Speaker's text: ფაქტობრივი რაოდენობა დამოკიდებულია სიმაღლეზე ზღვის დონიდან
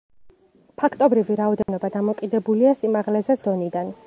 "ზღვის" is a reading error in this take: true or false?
true